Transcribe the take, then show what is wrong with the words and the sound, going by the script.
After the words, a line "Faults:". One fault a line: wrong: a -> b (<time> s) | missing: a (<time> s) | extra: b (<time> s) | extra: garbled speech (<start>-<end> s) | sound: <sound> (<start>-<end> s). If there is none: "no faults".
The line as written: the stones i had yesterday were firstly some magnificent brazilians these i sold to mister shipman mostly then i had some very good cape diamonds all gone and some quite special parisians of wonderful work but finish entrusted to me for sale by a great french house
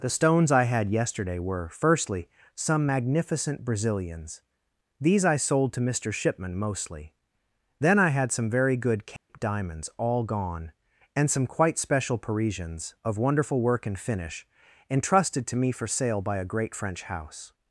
the stones i had yesterday were firstly some magnificent brazilians these i sold to mister shipman mostly then i had some very good cape diamonds all gone and some quite special parisians of wonderful work and finish entrusted to me for sale by a great french house
Faults:
sound: dropout (9.2-9.3 s)
wrong: but -> and (13.9 s)